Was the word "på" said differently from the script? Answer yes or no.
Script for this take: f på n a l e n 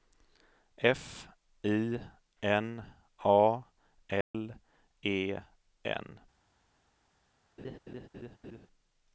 yes